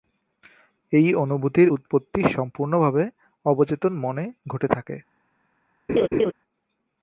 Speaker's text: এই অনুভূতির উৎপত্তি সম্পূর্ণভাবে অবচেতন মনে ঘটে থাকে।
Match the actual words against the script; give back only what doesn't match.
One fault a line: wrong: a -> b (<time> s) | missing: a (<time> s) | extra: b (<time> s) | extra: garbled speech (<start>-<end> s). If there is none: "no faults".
no faults